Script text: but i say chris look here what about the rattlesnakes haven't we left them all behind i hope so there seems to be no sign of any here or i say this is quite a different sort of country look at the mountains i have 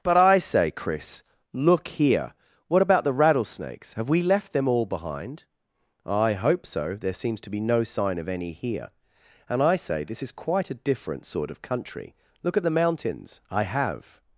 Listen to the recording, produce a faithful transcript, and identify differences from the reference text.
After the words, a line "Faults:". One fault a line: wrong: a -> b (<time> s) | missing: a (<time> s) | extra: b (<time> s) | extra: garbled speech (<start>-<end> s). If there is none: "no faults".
but i say chris look here what about the rattlesnakes have we left them all behind i hope so there seems to be no sign of any here and i say this is quite a different sort of country look at the mountains i have
Faults:
wrong: haven't -> have (3.9 s)
wrong: or -> and (9.5 s)